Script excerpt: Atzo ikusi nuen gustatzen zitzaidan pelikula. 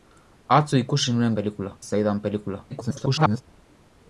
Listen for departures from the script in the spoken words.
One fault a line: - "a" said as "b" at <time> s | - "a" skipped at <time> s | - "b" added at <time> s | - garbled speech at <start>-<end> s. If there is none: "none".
- "gustatzen" said as "pelikula" at 1.4 s
- garbled speech at 2.7-3.4 s